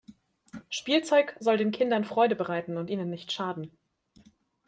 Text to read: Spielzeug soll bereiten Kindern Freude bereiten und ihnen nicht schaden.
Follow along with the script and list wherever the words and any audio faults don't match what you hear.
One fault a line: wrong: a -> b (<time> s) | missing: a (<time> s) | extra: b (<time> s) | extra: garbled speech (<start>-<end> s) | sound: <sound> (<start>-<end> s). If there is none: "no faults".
wrong: bereiten -> den (1.6 s)